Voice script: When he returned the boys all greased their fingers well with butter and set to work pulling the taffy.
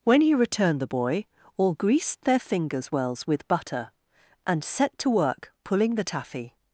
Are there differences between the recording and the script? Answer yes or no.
yes